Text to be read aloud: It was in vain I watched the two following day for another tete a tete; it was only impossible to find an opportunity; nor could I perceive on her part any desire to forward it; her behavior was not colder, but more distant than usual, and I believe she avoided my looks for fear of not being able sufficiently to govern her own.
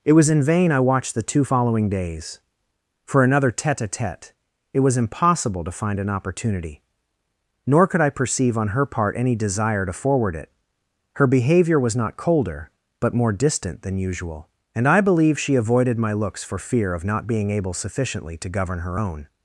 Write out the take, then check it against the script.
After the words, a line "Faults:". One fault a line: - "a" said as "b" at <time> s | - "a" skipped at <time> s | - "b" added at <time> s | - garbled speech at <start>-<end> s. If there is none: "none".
It was in vain I watched the two following days for another tete a tete; it was impossible to find an opportunity; nor could I perceive on her part any desire to forward it; her behavior was not colder, but more distant than usual, and I believe she avoided my looks for fear of not being able sufficiently to govern her own.
Faults:
- "day" said as "days" at 1.9 s
- "only" skipped at 5.0 s